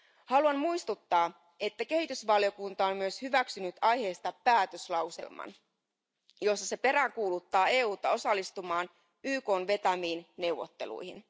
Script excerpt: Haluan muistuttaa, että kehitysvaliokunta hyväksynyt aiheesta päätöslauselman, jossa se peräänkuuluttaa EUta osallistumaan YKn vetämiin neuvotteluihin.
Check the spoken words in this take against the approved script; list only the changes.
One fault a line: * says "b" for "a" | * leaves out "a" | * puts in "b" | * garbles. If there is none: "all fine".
* puts in "on myös"